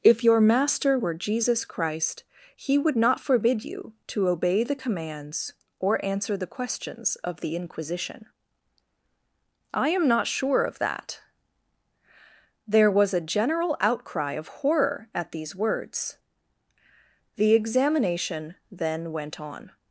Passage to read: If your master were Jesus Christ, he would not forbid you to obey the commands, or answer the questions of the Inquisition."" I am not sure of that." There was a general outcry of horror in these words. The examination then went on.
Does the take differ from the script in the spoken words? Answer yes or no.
yes